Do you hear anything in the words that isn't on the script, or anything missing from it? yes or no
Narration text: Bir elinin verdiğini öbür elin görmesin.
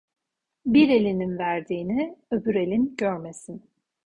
no